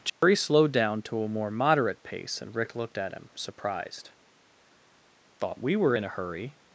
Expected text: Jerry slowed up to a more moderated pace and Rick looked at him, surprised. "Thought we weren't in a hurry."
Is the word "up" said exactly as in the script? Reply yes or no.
no